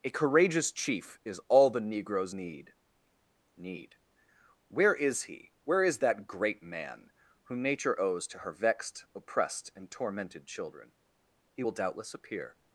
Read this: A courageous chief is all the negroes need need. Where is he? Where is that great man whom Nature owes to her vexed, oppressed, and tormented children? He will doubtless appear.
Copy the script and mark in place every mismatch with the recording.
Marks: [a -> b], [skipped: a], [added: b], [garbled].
A courageous chief is all the negroes need need. Where is he? Where is that great man whom Nature owes to her vexed, oppressed, and tormented children? He will doubtless appear.